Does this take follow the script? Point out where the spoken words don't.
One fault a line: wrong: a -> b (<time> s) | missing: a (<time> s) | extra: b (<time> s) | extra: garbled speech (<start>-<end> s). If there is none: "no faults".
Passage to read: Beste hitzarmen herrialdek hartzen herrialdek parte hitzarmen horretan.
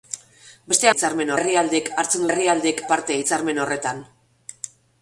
no faults